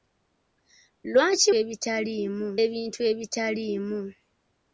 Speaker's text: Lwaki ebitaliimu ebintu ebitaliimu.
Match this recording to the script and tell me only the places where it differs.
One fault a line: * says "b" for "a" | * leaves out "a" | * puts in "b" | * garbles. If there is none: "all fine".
all fine